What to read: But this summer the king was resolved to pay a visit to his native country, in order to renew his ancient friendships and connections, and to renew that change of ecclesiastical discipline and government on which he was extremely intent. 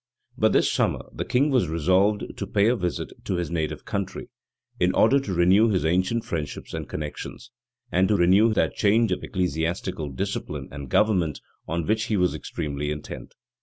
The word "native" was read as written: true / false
true